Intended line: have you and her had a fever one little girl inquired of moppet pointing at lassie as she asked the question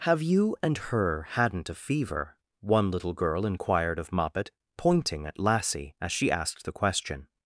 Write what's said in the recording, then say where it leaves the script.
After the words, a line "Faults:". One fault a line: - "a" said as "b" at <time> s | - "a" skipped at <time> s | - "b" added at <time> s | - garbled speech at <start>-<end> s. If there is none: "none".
have you and her hadn't a fever one little girl inquired of moppet pointing at lassie as she asked the question
Faults:
- "had" said as "hadn't" at 1.3 s